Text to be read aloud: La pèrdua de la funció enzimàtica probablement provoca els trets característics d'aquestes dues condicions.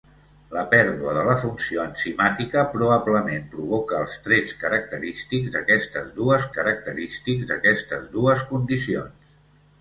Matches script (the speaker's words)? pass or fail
fail